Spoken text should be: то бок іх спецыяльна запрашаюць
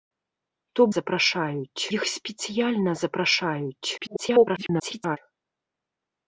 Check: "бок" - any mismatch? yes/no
yes